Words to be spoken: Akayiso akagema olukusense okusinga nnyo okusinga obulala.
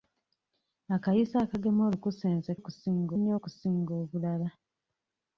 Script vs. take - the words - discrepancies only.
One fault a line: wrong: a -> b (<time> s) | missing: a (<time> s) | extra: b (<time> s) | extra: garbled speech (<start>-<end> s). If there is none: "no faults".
no faults